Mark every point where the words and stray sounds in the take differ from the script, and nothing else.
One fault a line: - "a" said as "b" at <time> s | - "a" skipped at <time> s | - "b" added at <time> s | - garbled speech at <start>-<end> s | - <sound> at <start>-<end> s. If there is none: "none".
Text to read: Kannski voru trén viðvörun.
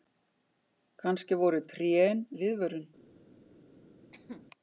- cough at 4.1-4.5 s